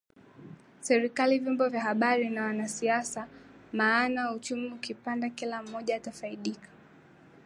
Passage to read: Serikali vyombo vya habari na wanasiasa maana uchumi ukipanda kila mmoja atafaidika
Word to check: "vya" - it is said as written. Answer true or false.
true